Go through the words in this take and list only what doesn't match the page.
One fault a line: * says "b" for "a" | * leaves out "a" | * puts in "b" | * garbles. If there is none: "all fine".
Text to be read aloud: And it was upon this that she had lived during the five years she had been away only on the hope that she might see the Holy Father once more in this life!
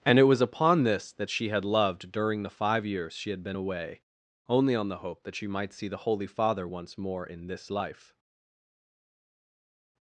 * says "loved" for "lived"